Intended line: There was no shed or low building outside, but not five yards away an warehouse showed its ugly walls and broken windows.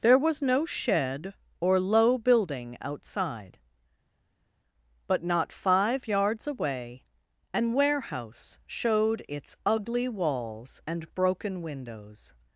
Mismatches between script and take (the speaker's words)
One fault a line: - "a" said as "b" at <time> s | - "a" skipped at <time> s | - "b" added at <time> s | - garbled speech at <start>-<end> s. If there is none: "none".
none